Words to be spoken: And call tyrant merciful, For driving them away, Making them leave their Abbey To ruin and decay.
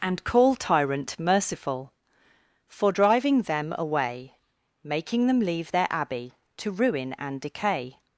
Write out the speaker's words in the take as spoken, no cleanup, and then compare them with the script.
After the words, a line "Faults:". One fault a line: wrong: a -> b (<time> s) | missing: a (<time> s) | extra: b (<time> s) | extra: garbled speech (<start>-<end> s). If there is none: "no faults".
And call tyrant merciful, For driving them away, Making them leave their Abbey To ruin and decay.
Faults:
no faults